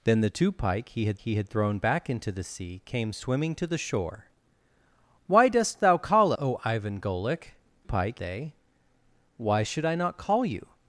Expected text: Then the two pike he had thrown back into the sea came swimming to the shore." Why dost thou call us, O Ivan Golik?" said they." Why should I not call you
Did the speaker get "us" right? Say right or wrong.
wrong